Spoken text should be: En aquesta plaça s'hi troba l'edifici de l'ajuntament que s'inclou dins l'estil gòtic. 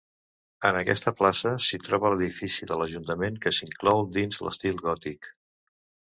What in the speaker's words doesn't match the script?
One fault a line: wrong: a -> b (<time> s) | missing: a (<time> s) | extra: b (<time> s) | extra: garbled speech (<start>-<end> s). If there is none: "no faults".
no faults